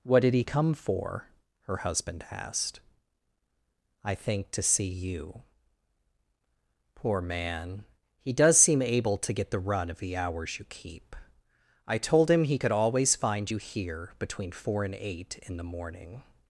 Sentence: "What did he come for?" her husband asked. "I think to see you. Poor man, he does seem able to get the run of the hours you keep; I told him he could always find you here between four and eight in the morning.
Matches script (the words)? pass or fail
pass